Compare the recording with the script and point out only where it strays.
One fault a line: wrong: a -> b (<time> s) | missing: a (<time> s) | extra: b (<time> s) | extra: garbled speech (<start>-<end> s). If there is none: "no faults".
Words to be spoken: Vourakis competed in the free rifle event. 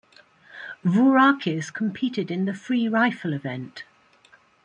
no faults